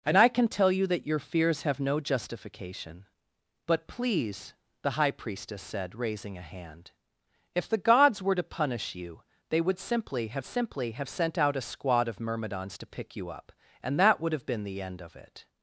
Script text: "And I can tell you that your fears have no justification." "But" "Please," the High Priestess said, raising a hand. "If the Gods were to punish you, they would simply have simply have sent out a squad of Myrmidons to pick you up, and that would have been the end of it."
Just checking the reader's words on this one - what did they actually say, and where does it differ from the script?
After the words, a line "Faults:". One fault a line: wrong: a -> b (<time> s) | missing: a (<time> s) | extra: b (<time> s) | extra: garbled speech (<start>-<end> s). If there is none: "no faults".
"And I can tell you that your fears have no justification." "But" "Please," the High Priestess said, raising a hand. "If the Gods were to punish you, they would simply have simply have sent out a squad of Myrmidons to pick you up, and that would have been the end of it."
Faults:
no faults